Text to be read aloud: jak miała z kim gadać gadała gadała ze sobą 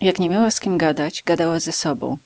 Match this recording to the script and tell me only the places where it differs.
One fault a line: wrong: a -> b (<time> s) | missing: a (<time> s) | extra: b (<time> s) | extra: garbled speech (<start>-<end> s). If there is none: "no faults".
extra: nie (0.2 s)
missing: gadała (1.6 s)